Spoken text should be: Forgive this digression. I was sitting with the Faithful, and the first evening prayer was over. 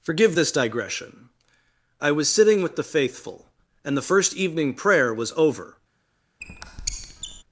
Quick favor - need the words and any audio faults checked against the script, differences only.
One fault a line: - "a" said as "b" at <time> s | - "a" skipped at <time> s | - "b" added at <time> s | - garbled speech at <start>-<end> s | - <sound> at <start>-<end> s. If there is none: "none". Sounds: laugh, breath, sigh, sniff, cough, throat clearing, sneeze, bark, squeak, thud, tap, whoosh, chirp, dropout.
- squeak at 6.4-7.4 s